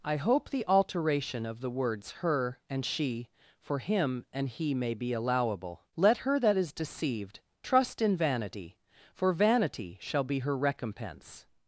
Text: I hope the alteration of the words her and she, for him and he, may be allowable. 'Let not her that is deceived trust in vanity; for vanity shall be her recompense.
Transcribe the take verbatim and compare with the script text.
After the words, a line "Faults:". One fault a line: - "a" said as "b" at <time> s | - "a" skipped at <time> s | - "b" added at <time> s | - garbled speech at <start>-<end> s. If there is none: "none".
I hope the alteration of the words her and she, for him and he, may be allowable. 'Let her that is deceived trust in vanity; for vanity shall be her recompense.
Faults:
- "not" skipped at 6.2 s